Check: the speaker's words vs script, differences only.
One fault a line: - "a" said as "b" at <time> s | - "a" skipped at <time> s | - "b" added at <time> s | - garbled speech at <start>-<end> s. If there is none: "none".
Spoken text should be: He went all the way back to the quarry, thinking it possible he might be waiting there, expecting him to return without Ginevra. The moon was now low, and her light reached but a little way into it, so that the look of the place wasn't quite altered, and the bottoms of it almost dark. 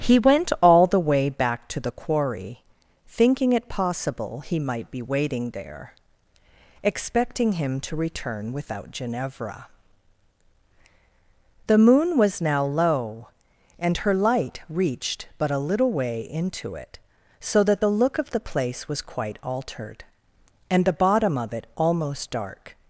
- "wasn't" said as "was" at 18.9 s
- "bottoms" said as "bottom" at 20.9 s